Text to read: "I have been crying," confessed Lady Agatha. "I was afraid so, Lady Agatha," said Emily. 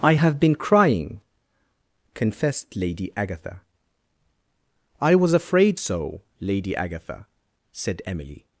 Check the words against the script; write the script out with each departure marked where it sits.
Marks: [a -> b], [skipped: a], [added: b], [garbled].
"I have been crying," confessed Lady Agatha. "I was afraid so, Lady Agatha," said Emily.